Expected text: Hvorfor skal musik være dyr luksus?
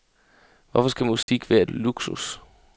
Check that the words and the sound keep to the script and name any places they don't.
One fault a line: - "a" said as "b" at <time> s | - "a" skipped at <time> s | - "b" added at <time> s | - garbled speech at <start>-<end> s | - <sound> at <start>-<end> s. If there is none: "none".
- dropout at 1.2-1.3 s
- "dyr" skipped at 1.6 s